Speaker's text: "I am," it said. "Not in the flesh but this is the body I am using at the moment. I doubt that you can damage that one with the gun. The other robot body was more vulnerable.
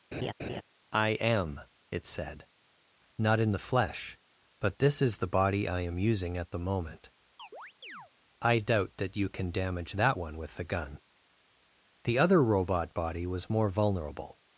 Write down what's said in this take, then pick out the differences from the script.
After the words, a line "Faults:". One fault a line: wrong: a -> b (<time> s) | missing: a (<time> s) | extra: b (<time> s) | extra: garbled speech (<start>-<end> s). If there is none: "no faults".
"I am," it said. "Not in the flesh but this is the body I am using at the moment. I doubt that you can damage that one with the gun. The other robot body was more vulnerable.
Faults:
no faults